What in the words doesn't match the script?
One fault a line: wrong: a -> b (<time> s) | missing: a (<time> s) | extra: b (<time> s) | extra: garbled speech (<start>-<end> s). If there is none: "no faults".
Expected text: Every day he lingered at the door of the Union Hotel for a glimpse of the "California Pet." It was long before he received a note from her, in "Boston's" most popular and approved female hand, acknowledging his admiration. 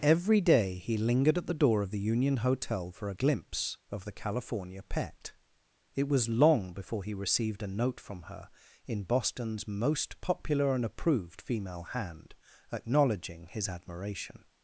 no faults